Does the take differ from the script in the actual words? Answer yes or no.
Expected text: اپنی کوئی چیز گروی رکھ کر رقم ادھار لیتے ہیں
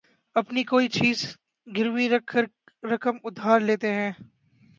no